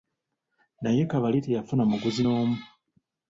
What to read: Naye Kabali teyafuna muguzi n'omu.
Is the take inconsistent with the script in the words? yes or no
no